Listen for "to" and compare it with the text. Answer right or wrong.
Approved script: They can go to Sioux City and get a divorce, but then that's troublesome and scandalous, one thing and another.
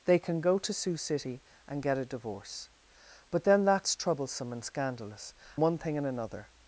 right